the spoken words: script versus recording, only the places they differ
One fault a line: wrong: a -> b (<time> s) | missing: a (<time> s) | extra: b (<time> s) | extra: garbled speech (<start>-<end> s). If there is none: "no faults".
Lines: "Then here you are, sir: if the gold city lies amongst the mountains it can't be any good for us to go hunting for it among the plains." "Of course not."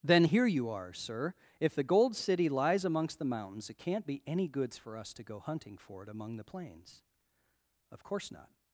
wrong: good -> goods (4.5 s)